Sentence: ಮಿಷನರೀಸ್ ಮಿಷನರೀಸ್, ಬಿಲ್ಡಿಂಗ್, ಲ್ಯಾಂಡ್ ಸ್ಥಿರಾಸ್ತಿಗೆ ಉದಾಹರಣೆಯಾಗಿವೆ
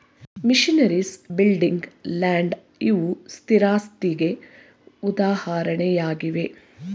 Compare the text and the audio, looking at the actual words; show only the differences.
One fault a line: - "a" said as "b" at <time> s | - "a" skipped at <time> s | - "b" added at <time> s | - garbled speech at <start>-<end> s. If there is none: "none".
- "ಮಿಷನರೀಸ್" skipped at 1.1 s
- "ಇವು" added at 2.8 s